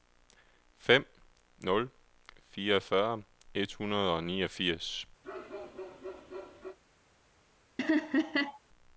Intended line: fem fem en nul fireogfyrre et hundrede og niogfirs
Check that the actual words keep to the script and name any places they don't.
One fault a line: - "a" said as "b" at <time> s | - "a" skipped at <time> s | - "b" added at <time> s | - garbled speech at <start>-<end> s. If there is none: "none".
- "fem en" skipped at 1.1 s